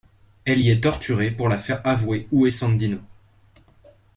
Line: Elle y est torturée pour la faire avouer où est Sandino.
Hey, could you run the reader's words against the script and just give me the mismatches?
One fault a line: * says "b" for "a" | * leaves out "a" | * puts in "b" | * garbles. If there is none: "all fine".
all fine